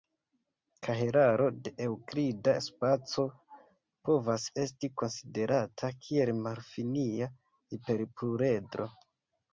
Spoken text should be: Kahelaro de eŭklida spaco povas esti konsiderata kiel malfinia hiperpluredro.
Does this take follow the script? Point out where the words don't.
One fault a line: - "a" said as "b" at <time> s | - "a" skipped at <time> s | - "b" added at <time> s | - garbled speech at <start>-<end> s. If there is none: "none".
none